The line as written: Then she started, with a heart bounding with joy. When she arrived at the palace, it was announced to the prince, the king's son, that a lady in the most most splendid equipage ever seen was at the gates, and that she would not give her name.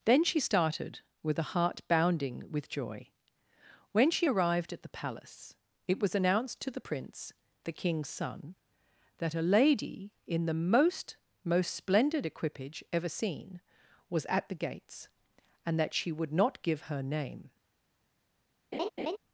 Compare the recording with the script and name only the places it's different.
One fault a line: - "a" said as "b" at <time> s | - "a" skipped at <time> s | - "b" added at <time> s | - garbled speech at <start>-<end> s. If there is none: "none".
none